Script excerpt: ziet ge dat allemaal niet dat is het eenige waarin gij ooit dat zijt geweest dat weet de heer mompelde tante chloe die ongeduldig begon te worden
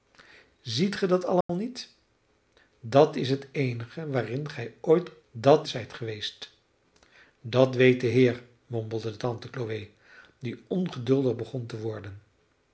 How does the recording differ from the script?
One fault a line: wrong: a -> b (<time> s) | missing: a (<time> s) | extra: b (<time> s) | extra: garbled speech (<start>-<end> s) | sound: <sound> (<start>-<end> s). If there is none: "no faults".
sound: dropout (1.4-1.5 s)